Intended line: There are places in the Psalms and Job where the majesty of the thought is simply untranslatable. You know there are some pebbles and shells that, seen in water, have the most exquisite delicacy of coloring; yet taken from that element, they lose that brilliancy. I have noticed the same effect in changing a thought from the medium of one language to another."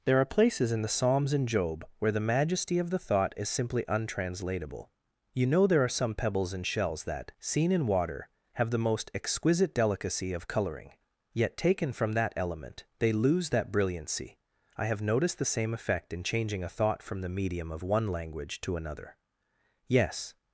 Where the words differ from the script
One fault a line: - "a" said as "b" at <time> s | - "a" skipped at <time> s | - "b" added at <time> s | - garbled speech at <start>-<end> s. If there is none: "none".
- "Yes" added at 19.9 s